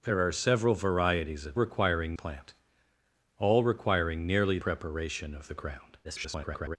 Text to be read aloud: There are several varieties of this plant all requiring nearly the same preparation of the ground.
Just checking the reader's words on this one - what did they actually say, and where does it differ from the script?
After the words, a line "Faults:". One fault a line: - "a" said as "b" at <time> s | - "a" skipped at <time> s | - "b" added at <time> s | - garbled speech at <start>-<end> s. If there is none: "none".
There are several varieties of requiring plant all requiring nearly preparation of the ground. [garbled]
Faults:
- "this" said as "requiring" at 1.5 s
- "the same" skipped at 4.6 s
- garbled speech at 6.0-6.8 s